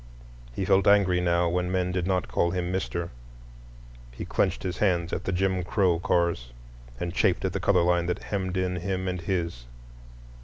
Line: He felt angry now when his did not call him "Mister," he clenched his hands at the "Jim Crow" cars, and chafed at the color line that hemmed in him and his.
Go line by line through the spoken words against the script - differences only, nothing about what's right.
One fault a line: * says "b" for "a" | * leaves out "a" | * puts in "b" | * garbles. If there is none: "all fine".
* says "men" for "his"